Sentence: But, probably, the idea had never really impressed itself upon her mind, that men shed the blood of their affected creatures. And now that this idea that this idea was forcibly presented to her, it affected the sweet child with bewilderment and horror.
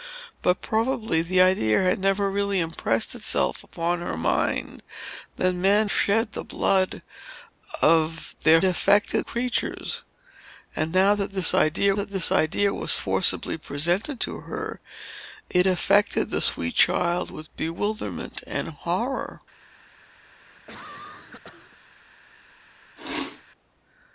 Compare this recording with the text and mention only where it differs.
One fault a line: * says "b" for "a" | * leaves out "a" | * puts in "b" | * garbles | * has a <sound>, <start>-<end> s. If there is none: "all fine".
* has a cough, 20.2-21.8 s
* has a sneeze, 23.0-23.4 s